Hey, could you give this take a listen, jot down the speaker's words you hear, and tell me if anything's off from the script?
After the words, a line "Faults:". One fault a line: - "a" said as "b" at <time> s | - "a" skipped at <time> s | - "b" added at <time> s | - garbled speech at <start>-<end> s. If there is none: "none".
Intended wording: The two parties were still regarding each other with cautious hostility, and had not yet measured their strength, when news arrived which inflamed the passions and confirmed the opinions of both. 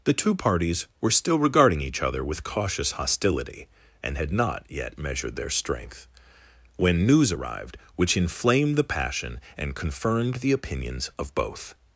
The two parties were still regarding each other with cautious hostility, and had not yet measured their strength, when news arrived which inflamed the passion and confirmed the opinions of both.
Faults:
- "passions" said as "passion" at 8.8 s